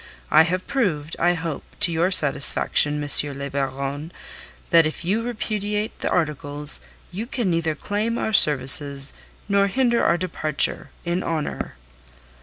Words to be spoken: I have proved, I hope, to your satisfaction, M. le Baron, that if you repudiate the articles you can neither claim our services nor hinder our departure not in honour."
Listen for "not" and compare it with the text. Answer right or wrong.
wrong